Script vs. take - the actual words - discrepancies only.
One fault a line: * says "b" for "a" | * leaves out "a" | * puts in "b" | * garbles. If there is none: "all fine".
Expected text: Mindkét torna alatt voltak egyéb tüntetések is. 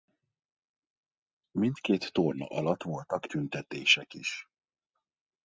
* leaves out "egyéb"